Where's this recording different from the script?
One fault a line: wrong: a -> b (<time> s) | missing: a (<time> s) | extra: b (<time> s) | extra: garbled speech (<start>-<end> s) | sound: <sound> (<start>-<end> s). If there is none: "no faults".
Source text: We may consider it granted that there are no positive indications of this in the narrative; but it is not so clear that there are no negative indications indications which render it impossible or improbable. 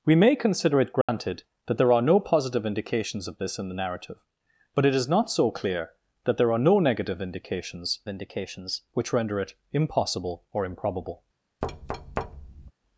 sound: dropout (1.0-1.1 s)
sound: thud (11.6-12.7 s)